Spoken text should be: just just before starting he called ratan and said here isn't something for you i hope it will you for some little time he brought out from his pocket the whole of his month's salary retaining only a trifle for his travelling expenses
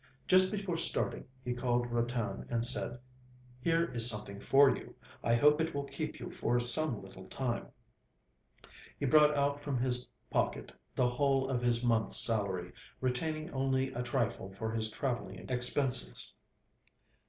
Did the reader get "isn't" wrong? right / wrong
wrong